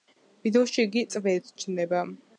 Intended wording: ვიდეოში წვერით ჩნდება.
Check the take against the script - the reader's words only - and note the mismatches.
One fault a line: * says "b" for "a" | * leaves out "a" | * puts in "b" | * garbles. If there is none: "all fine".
* puts in "იგი"